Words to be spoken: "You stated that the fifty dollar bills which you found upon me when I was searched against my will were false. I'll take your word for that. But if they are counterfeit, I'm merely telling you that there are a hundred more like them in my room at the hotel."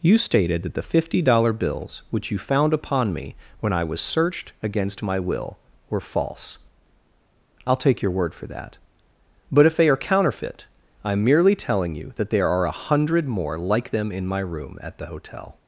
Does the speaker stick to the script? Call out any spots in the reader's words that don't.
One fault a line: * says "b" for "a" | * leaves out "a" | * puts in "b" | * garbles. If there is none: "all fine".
all fine